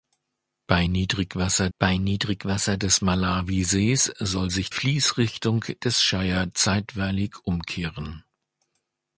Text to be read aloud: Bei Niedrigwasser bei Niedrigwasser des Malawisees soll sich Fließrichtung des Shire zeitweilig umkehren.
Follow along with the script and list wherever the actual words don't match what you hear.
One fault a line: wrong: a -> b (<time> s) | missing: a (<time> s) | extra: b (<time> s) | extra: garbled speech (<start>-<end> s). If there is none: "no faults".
no faults